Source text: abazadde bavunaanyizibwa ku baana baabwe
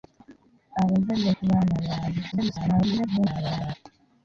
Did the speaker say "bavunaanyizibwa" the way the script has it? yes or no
no